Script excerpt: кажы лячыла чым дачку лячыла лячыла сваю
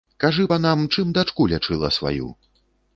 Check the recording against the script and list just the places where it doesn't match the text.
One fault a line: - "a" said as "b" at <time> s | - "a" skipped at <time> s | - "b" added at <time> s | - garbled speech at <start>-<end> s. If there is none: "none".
- "лячыла" said as "панам" at 0.5 s
- "лячыла" skipped at 1.9 s